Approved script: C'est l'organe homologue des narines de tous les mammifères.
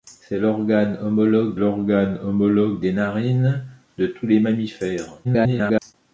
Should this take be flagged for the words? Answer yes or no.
yes